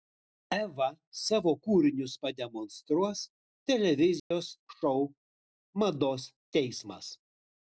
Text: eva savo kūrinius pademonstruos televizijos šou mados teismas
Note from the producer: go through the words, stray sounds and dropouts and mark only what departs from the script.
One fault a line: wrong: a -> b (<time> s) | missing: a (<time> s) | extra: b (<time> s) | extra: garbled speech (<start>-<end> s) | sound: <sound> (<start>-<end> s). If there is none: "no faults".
sound: dropout (4.2-4.3 s)